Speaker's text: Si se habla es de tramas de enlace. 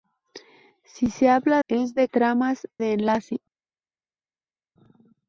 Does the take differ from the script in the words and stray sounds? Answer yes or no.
no